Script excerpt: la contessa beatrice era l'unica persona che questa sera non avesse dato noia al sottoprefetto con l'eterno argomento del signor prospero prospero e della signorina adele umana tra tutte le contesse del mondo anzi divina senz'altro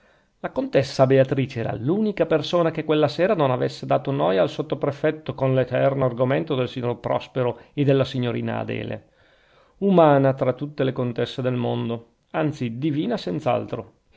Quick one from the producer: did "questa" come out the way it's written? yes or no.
no